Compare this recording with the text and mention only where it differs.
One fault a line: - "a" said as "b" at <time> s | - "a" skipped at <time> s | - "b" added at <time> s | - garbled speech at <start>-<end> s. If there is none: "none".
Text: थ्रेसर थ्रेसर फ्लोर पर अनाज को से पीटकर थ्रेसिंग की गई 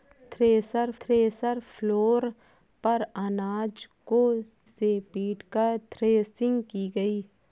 none